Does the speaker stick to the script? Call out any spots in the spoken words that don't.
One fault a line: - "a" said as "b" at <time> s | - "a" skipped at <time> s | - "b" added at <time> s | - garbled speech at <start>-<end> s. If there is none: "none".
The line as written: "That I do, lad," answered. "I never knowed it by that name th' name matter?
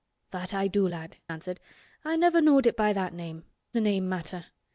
none